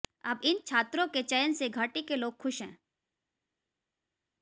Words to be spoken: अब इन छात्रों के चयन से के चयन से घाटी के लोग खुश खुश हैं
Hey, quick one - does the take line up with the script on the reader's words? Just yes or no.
no